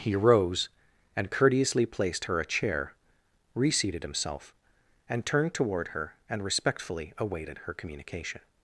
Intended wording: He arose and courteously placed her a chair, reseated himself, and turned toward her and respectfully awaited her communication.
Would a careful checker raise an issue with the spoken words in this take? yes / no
yes